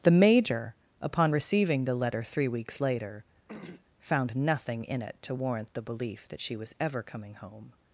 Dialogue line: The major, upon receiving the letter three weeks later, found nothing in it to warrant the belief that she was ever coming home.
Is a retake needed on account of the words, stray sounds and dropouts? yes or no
yes